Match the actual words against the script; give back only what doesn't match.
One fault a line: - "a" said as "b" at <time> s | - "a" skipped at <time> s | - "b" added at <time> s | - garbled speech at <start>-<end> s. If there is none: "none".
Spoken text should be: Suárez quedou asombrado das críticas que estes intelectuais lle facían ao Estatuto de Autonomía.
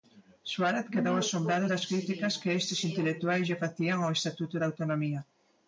none